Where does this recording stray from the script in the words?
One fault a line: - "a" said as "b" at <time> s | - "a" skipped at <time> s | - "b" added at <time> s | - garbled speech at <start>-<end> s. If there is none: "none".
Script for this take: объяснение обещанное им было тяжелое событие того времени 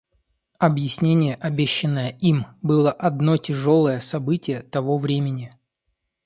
- "одно" added at 2.9 s